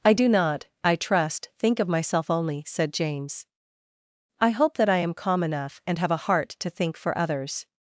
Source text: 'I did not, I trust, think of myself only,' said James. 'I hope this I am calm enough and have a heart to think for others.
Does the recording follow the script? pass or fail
fail